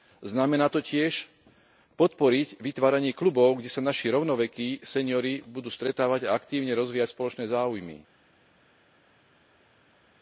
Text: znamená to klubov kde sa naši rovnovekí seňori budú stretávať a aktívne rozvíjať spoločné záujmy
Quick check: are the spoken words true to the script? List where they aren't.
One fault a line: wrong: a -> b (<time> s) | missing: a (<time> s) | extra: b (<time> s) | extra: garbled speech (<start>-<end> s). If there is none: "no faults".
extra: tiež podporiť vytváranie (0.8 s)